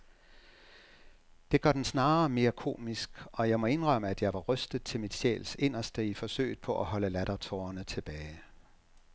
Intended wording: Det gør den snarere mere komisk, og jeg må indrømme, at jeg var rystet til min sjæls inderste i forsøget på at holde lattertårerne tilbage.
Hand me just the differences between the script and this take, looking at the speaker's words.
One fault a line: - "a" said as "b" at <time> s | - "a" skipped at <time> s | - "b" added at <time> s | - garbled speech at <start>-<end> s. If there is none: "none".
none